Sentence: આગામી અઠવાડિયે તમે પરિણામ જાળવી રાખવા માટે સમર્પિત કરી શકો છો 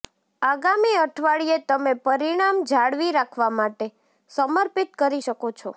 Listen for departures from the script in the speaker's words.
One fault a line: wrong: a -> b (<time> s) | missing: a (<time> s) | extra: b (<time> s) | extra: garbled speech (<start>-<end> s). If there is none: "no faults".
no faults